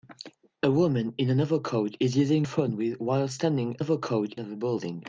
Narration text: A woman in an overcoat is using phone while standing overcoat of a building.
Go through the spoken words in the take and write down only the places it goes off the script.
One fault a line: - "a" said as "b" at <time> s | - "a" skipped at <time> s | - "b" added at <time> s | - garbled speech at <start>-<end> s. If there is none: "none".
none